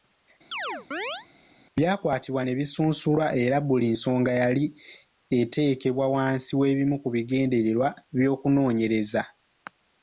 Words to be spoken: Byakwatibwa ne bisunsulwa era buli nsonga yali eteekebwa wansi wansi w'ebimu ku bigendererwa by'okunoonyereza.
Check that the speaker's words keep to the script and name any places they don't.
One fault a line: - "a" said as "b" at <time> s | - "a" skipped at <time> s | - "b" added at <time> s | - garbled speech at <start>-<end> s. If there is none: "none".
- "wansi" skipped at 6.5 s